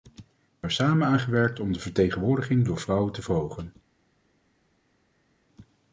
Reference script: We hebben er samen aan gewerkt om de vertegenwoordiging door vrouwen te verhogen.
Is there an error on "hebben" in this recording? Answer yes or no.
yes